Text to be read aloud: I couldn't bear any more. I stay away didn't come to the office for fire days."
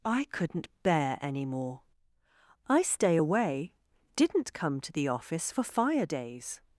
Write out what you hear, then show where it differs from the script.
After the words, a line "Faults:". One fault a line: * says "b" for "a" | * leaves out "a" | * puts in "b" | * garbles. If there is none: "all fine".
I couldn't bear any more. I stay away didn't come to the office for fire days."
Faults:
all fine